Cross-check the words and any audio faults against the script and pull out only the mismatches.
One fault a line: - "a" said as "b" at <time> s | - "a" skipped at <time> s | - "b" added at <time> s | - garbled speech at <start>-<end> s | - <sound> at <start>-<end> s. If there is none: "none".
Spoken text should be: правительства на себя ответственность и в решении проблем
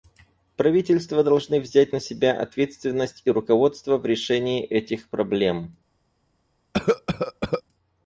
- "должны взять" added at 1.2 s
- "руководство" added at 3.3 s
- "этих" added at 4.6 s
- cough at 6.7-7.6 s